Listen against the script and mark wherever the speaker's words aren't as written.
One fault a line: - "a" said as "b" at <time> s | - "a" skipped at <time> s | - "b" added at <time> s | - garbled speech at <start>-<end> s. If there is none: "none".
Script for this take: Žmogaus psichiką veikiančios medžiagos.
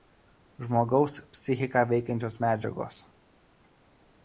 none